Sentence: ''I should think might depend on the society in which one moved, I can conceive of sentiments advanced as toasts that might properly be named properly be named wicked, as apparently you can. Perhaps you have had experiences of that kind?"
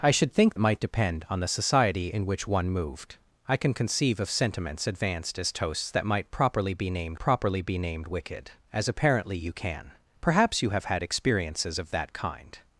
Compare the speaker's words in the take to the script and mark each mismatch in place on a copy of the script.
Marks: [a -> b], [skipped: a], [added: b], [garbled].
''I should think might depend on the society in which one moved, I can conceive of sentiments advanced as toasts that might properly be named properly be named wicked, as apparently you can. Perhaps you have had experiences of that kind?"